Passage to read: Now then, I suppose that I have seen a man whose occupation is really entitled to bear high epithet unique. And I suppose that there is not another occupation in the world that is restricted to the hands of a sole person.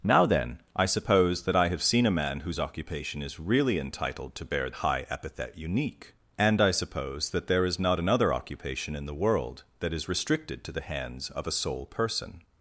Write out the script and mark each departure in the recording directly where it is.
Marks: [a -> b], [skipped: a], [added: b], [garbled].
Now then, I suppose that I have seen a man whose occupation is really entitled to bear high epithet unique. And I suppose that there is not another occupation in the world that is restricted to the hands of a sole person.